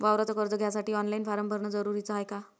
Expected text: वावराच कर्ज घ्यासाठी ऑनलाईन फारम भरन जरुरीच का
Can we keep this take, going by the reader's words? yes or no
no